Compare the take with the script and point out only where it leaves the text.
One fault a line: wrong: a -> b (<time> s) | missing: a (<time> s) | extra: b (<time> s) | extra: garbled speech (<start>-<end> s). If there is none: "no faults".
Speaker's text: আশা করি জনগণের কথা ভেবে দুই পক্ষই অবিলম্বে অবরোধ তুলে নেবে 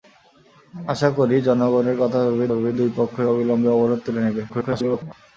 extra: ভেবে (2.5 s)
extra: garbled speech (4.5-5.1 s)